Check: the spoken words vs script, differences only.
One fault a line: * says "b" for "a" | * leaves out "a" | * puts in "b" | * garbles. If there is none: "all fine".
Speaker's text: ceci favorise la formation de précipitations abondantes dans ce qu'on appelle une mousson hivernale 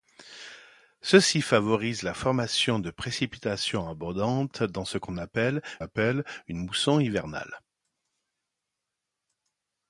* puts in "appelle"